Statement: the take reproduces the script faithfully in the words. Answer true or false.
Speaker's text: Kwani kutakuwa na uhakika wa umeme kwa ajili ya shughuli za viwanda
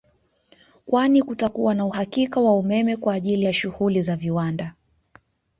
true